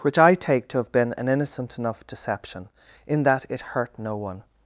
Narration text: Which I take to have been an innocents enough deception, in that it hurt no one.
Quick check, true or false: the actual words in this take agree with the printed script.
false